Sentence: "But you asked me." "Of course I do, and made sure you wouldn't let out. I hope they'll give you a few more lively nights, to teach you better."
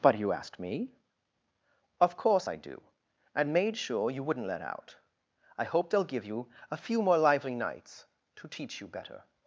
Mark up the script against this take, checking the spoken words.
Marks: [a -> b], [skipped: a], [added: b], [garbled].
"But you asked me." "Of course I do, and made sure you wouldn't let out. I hope they'll give you a few more lively nights, to teach you better."